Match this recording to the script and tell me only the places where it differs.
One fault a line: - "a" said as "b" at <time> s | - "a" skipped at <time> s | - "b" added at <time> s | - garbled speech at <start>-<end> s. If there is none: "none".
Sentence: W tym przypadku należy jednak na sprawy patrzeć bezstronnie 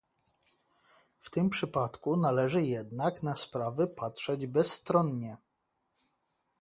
none